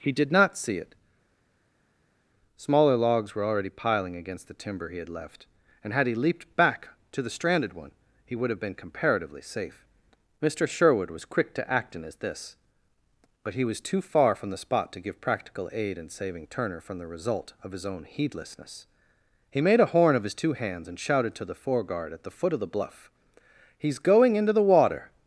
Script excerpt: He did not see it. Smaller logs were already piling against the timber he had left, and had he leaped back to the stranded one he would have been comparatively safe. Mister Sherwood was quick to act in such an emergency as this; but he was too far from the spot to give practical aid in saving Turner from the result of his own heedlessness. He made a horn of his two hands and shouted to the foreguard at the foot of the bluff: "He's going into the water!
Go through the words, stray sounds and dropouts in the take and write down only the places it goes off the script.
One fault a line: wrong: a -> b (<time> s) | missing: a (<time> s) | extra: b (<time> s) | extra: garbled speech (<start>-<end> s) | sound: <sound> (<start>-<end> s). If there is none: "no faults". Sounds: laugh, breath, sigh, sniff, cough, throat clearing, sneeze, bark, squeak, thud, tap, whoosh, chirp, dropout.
missing: such an emergency (12.0 s)